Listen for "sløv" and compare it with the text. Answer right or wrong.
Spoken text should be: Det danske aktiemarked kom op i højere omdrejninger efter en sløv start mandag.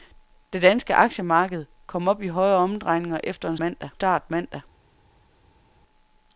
wrong